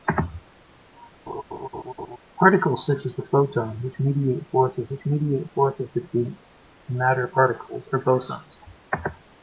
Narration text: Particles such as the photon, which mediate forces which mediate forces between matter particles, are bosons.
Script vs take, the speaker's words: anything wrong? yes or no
no